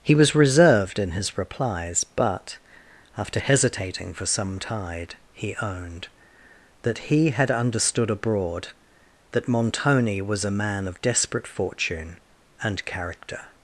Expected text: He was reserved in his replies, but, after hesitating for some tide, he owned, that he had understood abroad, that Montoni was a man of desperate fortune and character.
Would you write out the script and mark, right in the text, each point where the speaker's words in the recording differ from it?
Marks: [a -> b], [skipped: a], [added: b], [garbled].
He was reserved in his replies, but, after hesitating for some tide, he owned, that he had understood abroad, that Montoni was a man of desperate fortune and character.